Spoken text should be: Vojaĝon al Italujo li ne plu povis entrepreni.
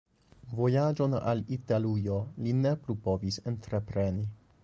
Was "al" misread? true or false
false